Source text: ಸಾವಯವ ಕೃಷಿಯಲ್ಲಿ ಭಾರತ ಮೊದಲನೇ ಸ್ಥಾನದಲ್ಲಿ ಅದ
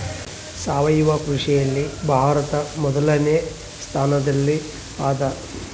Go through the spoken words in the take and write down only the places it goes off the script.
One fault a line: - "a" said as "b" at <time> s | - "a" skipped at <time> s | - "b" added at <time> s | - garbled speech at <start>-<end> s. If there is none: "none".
none